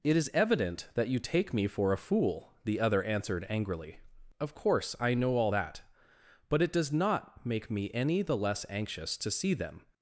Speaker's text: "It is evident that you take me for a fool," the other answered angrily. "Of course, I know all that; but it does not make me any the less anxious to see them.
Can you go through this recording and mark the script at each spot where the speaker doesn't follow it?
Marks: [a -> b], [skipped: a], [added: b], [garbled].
"It is evident that you take me for a fool," the other answered angrily. "Of course, I know all that; but it does not make me any the less anxious to see them.